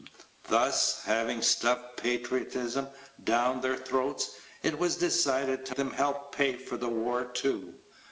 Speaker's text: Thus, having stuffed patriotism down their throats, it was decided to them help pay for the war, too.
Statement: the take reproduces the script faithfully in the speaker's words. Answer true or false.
true